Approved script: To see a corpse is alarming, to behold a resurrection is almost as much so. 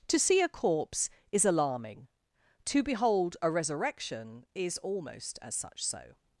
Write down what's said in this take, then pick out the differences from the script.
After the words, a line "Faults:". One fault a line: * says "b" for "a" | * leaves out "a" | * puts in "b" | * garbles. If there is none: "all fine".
To see a corpse is alarming, to behold a resurrection is almost as such so.
Faults:
* says "such" for "much"